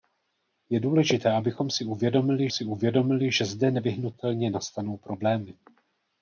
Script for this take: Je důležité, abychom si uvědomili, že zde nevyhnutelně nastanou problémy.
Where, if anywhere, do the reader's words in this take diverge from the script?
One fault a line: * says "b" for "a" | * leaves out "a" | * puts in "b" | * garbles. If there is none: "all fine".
* puts in "si uvědomili"